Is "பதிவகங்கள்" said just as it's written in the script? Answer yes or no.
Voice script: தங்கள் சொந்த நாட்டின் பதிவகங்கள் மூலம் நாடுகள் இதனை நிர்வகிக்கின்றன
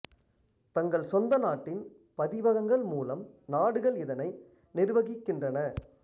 yes